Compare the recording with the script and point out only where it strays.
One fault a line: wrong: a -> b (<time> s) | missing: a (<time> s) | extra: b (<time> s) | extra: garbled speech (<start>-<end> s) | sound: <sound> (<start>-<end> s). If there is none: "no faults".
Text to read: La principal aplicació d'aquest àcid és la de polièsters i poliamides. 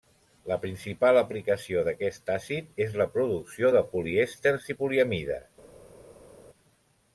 extra: producció (3.2 s)